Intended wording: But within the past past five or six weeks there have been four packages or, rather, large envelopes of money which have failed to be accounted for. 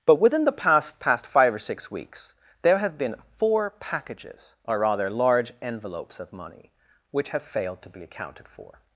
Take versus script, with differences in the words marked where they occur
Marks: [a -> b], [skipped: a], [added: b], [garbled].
But within the past past five or six weeks there have been four packages or, rather, large envelopes of money which have failed to be accounted for.